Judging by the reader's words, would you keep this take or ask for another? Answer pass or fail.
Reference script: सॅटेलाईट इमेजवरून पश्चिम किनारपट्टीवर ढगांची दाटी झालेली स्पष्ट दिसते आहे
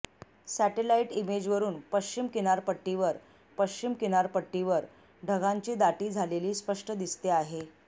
fail